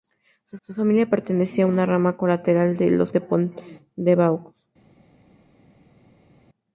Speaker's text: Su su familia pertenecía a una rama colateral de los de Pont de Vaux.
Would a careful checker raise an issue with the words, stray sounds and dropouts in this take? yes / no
no